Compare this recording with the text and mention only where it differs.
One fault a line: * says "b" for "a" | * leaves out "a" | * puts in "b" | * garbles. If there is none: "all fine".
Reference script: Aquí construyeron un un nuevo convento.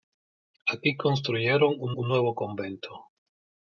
all fine